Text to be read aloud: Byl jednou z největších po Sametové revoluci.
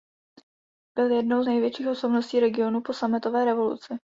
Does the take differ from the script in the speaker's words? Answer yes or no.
yes